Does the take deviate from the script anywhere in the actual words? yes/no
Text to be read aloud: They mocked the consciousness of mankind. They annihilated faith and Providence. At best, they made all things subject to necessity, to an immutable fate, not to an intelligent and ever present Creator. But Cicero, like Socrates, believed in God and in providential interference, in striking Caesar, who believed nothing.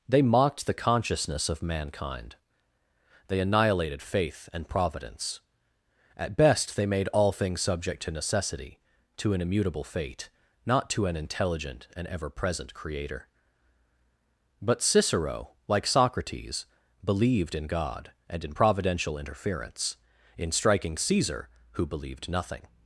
no